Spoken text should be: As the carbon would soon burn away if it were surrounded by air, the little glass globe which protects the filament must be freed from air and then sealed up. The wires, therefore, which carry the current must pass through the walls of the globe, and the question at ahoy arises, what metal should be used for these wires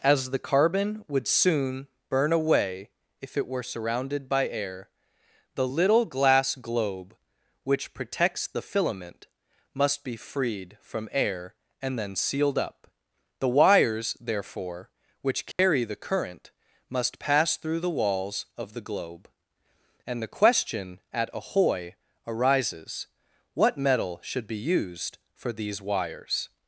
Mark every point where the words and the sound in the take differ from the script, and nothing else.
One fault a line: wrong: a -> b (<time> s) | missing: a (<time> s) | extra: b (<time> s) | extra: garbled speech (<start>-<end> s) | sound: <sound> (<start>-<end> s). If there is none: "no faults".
sound: dropout (15.5-15.6 s)